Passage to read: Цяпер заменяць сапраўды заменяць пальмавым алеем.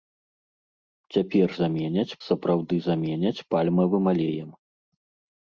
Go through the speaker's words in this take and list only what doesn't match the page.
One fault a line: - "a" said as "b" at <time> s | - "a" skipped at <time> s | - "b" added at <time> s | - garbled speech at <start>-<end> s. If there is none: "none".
none